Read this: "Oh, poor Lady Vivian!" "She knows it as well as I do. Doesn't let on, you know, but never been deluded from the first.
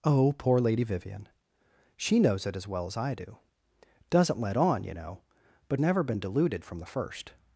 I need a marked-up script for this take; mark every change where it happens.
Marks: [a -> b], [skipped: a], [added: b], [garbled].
"Oh, poor Lady Vivian!" "She knows it as well as I do. Doesn't let on, you know, but never been deluded from the first.